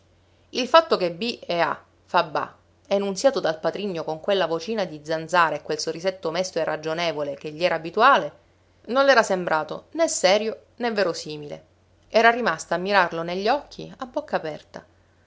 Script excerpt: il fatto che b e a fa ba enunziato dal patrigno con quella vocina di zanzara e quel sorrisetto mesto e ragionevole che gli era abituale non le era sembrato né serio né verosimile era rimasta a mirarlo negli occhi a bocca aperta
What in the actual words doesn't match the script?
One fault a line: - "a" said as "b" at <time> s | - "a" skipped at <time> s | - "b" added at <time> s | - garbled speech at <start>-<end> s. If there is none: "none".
none